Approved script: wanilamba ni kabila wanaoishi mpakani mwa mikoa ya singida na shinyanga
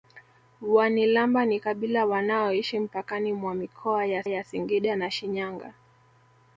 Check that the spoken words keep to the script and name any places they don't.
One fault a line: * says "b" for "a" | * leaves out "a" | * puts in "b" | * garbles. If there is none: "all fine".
* puts in "ya"